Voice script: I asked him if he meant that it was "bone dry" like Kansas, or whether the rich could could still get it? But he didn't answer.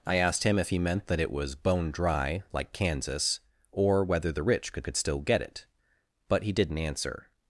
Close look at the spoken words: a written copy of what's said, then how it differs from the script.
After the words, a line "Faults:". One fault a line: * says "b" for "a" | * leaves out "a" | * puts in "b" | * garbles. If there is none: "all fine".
I asked him if he meant that it was "bone dry" like Kansas, or whether the rich could could still get it? But he didn't answer.
Faults:
all fine